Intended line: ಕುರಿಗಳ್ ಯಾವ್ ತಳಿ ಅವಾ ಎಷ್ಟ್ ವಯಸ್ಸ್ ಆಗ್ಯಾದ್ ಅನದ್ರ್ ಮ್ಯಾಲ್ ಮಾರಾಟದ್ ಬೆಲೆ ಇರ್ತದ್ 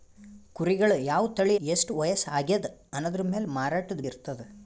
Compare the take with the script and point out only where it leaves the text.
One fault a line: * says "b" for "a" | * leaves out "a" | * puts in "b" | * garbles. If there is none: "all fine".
* leaves out "ಅವಾ"
* leaves out "ಬೆಲೆ"